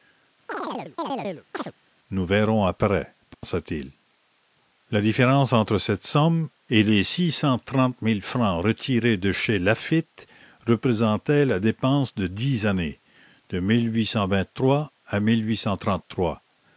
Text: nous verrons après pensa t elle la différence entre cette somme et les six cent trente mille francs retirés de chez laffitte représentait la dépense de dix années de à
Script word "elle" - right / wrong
wrong